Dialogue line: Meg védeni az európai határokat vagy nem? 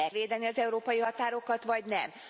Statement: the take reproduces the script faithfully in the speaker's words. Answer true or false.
true